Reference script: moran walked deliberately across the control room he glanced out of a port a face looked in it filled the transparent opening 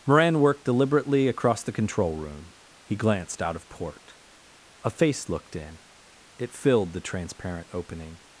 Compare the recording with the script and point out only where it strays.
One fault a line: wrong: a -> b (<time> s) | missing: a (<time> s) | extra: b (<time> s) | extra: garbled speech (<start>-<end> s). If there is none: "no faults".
wrong: walked -> worked (0.4 s)
missing: a (3.7 s)